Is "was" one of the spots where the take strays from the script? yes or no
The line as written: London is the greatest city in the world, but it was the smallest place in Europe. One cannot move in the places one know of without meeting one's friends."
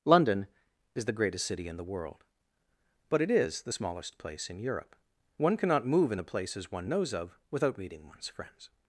yes